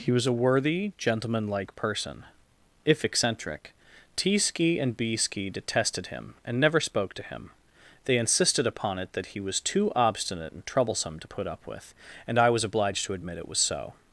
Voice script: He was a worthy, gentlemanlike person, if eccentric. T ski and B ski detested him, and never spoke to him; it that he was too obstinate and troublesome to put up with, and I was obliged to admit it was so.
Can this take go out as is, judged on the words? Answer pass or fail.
fail